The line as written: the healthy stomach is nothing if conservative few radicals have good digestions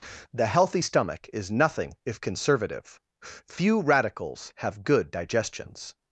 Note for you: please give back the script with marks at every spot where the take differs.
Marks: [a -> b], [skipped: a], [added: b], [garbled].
the healthy stomach is nothing if conservative few radicals have good digestions